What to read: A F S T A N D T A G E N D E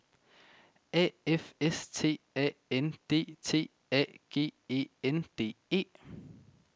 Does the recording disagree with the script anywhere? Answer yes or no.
no